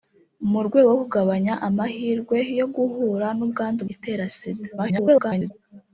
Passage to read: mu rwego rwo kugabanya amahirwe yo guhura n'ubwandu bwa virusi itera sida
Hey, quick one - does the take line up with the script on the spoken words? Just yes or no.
no